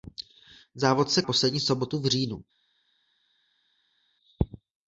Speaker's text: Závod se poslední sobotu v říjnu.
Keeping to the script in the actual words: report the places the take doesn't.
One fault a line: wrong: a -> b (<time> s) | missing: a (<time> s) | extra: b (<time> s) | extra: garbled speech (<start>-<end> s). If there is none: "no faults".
no faults